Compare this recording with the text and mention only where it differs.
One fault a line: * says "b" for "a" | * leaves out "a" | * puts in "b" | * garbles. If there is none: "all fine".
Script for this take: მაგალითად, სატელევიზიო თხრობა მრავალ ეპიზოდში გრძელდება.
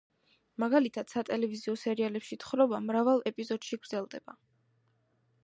* puts in "სერიალებში"